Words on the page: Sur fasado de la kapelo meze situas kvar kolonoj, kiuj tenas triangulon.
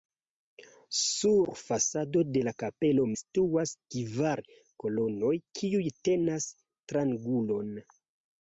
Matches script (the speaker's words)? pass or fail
fail